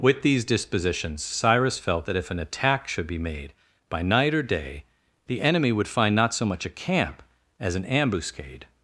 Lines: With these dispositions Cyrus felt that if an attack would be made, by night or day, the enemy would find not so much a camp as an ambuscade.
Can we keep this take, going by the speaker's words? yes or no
no